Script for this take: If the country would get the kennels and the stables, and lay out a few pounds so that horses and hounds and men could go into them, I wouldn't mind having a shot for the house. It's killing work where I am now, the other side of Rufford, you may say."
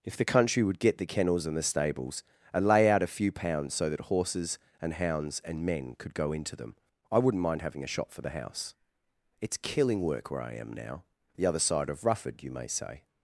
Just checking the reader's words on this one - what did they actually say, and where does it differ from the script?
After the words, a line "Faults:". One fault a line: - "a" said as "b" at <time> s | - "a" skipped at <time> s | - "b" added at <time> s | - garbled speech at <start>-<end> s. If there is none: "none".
If the country would get the kennels and the stables, and lay out a few pounds so that horses and hounds and men could go into them, I wouldn't mind having a shop for the house. It's killing work where I am now, the other side of Rufford, you may say."
Faults:
- "shot" said as "shop" at 7.9 s